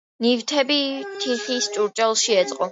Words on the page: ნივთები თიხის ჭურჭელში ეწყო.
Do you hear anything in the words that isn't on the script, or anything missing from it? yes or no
no